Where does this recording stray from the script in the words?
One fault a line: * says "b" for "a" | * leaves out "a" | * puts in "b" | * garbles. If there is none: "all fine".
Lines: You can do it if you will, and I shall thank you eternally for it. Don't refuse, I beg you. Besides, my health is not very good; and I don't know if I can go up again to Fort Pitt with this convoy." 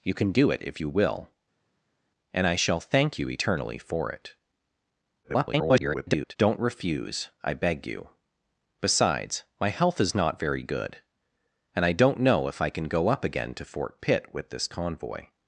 * garbles